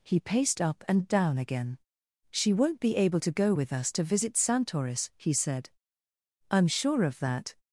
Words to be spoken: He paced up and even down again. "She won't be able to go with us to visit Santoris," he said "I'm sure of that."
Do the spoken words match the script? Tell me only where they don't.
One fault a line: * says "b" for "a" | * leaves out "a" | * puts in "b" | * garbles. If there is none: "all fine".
* leaves out "even"